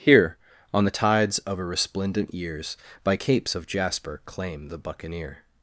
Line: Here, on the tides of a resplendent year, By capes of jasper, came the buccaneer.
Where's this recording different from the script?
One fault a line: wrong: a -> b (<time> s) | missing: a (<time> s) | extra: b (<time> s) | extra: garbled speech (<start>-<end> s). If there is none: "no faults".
wrong: year -> years (2.3 s)
wrong: came -> claim (4.3 s)